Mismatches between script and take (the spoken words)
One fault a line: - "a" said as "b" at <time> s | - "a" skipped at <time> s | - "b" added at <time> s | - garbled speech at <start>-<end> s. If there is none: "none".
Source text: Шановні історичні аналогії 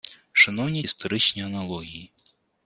none